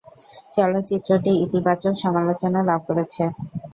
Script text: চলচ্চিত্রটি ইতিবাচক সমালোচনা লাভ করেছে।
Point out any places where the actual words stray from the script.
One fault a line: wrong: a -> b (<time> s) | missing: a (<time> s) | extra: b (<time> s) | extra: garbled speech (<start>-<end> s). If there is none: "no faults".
no faults